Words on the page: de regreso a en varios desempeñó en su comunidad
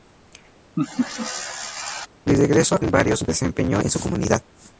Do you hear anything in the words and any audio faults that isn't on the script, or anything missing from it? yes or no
yes